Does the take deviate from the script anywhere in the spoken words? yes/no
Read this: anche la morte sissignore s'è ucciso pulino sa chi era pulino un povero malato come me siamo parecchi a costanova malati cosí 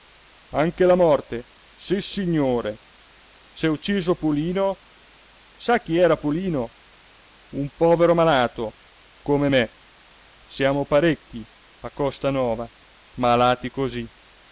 no